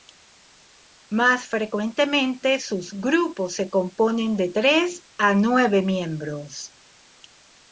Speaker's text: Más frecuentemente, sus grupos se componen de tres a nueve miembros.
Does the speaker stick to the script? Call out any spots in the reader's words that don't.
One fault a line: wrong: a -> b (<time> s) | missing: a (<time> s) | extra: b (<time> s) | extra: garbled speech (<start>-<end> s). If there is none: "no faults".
no faults